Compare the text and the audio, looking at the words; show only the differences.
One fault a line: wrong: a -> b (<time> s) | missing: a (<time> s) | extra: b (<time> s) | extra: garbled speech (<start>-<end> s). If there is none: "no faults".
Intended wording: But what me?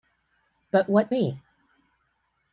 no faults